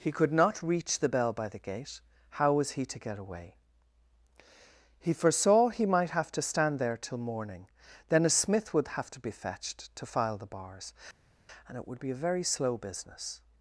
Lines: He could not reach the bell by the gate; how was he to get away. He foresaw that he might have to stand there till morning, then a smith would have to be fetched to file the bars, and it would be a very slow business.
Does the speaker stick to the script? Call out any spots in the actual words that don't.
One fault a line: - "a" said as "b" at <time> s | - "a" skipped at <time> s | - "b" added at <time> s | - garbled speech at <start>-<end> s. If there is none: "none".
- "that" skipped at 5.7 s